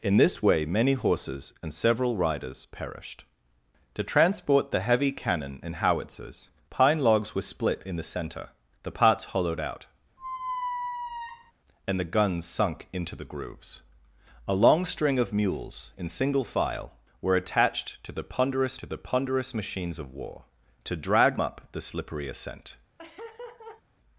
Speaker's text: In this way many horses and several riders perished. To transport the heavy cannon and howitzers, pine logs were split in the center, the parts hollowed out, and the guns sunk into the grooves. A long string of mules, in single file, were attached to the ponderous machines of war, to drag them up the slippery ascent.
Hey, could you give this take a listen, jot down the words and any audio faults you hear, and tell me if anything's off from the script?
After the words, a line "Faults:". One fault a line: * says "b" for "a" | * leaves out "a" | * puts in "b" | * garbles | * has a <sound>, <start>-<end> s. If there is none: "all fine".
In this way many horses and several riders perished. To transport the heavy cannon and howitzers, pine logs were split in the center, the parts hollowed out, and the guns sunk into the grooves. A long string of mules, in single file, were attached to the ponderous to the ponderous machines of war, to drag up the slippery ascent.
Faults:
* has a squeak, 10.2-11.5 s
* puts in "to the ponderous"
* leaves out "them"
* has a laugh, 23.0-23.8 s